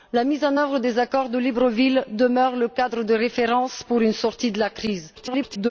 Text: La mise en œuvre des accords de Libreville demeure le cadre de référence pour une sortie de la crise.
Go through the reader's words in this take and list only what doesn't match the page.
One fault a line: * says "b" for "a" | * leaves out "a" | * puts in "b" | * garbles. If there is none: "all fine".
* garbles